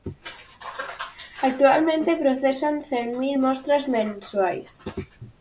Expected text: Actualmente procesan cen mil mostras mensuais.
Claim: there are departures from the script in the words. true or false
false